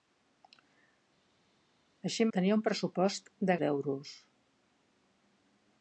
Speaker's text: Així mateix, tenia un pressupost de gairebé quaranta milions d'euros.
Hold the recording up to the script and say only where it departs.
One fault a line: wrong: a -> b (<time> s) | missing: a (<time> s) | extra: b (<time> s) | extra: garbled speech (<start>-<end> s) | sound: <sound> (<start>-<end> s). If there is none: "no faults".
missing: mateix (2.3 s)
missing: gairebé quaranta milions (3.6 s)